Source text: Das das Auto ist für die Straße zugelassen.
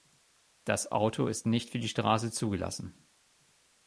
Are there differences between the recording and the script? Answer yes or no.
yes